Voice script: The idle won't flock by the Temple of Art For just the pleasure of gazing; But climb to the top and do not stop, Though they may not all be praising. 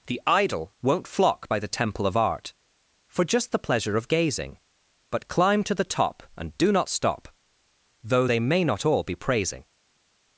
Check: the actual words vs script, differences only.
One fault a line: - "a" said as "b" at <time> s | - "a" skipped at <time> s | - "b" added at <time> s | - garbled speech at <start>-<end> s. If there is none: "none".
none